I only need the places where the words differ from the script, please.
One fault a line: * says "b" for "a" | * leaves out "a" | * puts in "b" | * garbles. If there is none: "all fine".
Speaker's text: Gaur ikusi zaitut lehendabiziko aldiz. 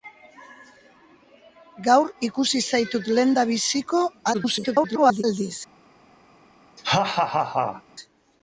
* garbles